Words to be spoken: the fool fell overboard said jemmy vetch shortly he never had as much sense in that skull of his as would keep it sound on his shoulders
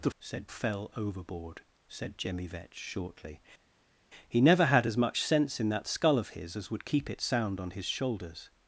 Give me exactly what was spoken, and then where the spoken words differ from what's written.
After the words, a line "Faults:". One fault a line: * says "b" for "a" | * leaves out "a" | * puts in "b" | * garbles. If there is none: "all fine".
the said fell overboard said jemmy vetch shortly he never had as much sense in that skull of his as would keep it sound on his shoulders
Faults:
* says "said" for "fool"